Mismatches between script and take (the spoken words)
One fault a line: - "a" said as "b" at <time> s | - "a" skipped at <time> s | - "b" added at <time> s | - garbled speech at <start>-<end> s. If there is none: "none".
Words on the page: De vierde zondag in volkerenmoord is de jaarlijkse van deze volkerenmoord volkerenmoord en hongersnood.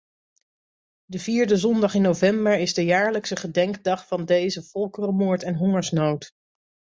- "volkerenmoord" said as "november" at 2.0 s
- "gedenkdag" added at 3.4 s
- "volkerenmoord" skipped at 5.4 s